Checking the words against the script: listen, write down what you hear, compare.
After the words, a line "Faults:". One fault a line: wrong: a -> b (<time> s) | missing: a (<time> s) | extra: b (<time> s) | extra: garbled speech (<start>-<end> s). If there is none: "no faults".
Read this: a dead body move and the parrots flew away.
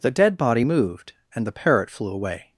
the dead body moved and the parrot flew away.
Faults:
wrong: a -> the (0.0 s)
wrong: move -> moved (0.6 s)
wrong: parrots -> parrot (1.5 s)